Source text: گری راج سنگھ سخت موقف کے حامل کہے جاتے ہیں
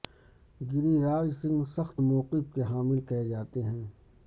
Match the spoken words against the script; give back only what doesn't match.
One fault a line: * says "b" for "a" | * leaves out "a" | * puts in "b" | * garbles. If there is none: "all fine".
all fine